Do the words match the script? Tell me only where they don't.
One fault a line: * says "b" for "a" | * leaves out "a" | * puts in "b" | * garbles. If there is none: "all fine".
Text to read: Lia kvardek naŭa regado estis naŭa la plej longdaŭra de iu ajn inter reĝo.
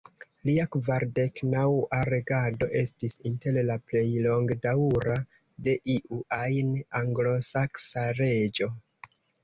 * says "inter" for "naŭa"
* says "anglosaksa" for "inter"